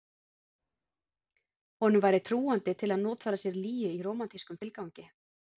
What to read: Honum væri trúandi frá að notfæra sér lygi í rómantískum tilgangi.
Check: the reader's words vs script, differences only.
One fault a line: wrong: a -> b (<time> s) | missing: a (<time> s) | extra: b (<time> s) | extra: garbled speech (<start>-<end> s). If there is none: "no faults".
wrong: frá -> til (2.8 s)